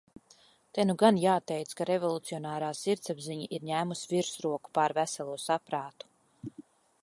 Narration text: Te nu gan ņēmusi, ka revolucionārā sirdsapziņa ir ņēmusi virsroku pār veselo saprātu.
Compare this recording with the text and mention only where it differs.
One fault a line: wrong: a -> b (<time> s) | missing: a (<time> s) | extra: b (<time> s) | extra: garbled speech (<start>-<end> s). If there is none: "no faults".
wrong: ņēmusi -> jāteic (1.2 s)